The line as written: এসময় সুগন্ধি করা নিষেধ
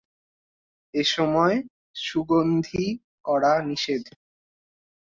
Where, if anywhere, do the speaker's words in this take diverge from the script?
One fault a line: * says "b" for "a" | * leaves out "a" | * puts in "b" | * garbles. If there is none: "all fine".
all fine